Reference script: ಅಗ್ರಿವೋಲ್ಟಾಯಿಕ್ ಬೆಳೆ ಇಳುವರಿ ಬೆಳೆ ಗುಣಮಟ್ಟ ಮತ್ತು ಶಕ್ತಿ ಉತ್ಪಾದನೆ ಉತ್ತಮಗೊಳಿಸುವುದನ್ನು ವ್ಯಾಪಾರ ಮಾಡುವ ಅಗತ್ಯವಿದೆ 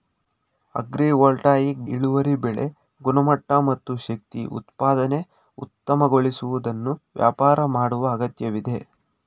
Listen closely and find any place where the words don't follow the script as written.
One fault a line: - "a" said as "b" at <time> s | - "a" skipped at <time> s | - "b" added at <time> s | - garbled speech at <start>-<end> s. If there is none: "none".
- "ಬೆಳೆ" skipped at 1.8 s